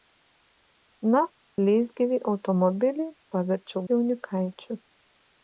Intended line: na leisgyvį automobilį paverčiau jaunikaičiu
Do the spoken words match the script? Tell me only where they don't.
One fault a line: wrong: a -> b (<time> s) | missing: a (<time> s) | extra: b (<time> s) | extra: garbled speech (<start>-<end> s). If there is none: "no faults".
no faults